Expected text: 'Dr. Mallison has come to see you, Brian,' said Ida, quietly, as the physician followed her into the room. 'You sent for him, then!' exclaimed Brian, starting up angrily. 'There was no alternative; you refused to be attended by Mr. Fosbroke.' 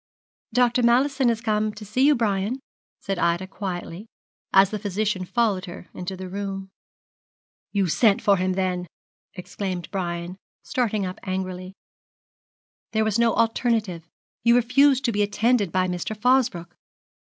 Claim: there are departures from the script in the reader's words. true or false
false